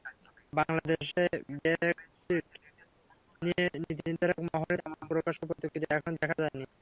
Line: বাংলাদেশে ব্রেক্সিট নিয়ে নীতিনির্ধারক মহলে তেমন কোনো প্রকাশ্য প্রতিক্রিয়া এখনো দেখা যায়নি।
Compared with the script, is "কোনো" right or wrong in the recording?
wrong